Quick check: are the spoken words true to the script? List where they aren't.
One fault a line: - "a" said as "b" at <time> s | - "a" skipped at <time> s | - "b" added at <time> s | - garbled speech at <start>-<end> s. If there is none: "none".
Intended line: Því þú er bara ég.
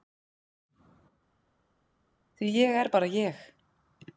- "þú" said as "ég" at 2.6 s